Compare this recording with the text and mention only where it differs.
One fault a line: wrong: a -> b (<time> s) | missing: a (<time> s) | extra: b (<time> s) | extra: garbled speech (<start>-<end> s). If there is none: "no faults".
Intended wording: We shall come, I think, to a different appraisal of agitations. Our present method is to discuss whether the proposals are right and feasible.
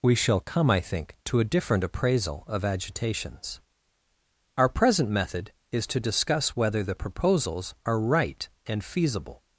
no faults